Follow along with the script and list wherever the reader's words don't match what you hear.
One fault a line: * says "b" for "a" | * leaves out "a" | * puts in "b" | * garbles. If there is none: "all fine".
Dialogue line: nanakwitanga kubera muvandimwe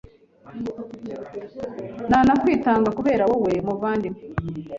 * puts in "wowe"